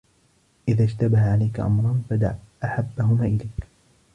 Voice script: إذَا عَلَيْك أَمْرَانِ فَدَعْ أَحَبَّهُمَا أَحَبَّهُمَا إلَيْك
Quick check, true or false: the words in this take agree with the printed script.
false